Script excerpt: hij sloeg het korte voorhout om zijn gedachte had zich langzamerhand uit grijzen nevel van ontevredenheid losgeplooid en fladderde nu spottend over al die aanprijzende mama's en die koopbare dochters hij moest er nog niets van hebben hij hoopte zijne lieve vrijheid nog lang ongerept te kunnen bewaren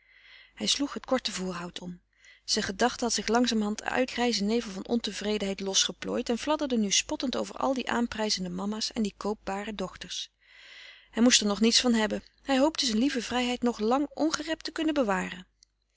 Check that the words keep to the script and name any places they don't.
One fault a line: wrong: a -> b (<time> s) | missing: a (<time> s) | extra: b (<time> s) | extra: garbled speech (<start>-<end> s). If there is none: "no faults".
no faults